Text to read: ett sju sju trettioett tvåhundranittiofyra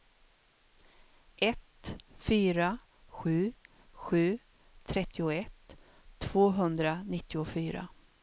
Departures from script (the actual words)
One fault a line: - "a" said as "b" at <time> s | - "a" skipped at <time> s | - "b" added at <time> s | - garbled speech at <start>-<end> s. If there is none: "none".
- "fyra" added at 2.2 s